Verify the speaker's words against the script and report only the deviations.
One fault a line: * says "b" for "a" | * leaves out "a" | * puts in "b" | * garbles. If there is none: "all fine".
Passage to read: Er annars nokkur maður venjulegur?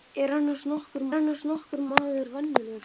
* puts in "annars nokkur"